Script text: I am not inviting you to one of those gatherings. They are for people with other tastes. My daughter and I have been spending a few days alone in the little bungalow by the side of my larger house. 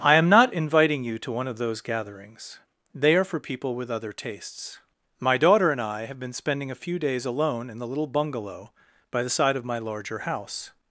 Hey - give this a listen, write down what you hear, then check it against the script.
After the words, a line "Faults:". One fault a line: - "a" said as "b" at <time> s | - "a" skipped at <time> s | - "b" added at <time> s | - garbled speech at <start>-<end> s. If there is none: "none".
I am not inviting you to one of those gatherings. They are for people with other tastes. My daughter and I have been spending a few days alone in the little bungalow by the side of my larger house.
Faults:
none